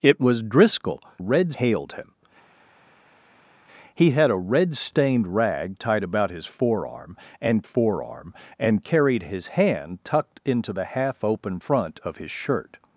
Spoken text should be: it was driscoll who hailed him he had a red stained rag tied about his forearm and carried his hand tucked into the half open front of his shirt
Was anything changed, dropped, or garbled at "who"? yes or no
yes